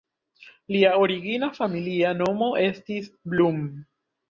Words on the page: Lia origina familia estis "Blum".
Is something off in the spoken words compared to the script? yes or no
yes